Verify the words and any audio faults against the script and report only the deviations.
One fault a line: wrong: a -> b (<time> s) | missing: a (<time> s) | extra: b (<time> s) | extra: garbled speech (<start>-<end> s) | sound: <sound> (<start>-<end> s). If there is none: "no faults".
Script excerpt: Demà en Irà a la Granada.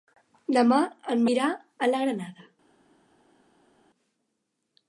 no faults